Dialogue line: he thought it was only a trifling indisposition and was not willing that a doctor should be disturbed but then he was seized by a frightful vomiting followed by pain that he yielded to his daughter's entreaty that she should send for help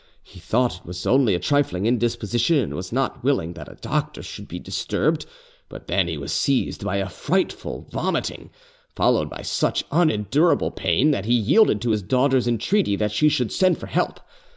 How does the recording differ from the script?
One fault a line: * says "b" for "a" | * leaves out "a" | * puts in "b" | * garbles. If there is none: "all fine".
* puts in "such unendurable"